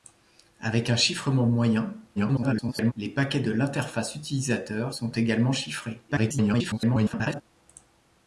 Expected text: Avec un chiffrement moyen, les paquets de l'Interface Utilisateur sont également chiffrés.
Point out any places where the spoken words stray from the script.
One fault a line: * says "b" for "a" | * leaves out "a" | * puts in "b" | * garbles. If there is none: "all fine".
* garbles
* garbles